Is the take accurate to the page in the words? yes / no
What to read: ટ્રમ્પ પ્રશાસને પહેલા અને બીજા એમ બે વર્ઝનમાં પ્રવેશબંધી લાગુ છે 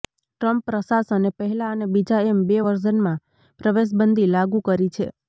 no